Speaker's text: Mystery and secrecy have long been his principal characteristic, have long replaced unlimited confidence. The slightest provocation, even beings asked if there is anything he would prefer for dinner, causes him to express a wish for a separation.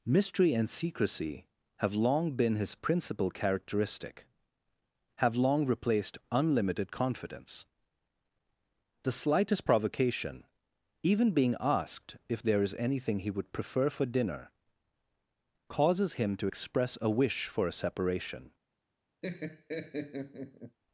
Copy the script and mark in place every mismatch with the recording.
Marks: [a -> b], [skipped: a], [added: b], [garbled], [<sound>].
Mystery and secrecy have long been his principal characteristic, have long replaced unlimited confidence. The slightest provocation, even [beings -> being] asked if there is anything he would prefer for dinner, causes him to express a wish for a separation. [laugh]